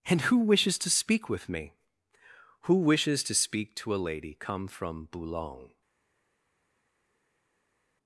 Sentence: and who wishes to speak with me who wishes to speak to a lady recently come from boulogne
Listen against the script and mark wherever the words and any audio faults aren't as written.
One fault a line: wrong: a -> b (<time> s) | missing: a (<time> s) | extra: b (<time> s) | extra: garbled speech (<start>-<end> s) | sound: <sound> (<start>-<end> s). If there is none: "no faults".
missing: recently (4.3 s)